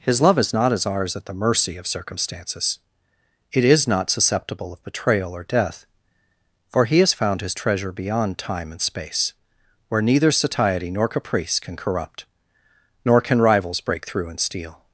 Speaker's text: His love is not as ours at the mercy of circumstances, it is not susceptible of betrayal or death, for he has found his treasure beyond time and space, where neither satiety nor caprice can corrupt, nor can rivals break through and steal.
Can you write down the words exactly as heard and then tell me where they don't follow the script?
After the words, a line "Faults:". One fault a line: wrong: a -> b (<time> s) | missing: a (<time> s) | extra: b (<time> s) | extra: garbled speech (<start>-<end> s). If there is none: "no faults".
His love is not as ours at the mercy of circumstances, it is not susceptible of betrayal or death, for he has found his treasure beyond time and space, where neither satiety nor caprice can corrupt, nor can rivals break through and steal.
Faults:
no faults